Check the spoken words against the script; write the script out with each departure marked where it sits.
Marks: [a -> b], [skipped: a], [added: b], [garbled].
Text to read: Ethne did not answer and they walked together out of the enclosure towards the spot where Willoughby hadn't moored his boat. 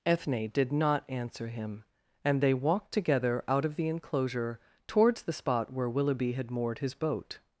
Ethne did not answer [added: him] and they walked together out of the enclosure towards the spot where Willoughby [hadn't -> had] moored his boat.